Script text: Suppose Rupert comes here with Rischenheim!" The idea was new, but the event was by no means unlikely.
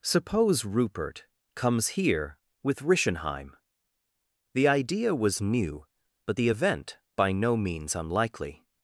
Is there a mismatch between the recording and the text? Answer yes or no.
yes